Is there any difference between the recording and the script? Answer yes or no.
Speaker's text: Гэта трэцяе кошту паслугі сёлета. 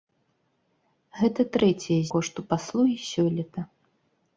no